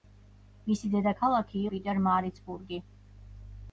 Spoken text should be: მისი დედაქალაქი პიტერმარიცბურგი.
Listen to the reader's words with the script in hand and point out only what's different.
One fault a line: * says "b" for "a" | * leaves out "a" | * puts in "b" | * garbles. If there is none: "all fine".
all fine